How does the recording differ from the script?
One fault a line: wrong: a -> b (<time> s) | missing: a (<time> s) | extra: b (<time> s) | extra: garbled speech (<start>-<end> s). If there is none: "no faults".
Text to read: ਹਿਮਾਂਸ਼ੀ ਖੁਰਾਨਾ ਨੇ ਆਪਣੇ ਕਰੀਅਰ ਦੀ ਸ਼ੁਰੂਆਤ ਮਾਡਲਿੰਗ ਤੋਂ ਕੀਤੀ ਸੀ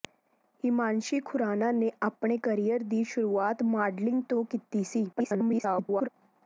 extra: garbled speech (5.1-6.1 s)